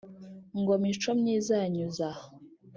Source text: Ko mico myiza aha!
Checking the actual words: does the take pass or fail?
fail